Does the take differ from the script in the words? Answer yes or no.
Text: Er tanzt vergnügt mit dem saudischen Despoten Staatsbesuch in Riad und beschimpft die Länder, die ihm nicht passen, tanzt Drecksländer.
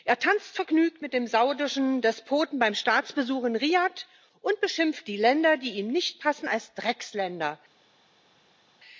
yes